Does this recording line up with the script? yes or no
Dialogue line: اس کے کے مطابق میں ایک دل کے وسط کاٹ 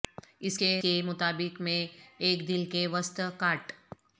yes